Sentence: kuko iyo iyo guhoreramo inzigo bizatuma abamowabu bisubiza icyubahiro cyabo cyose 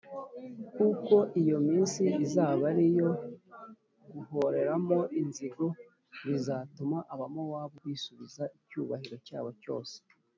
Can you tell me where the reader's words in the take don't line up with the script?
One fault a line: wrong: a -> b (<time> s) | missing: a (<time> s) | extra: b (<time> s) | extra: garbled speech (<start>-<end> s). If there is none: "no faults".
extra: minsi izaba ari (1.7 s)